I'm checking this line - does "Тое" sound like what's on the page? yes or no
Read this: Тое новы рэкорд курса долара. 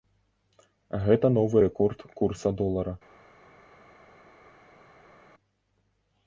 no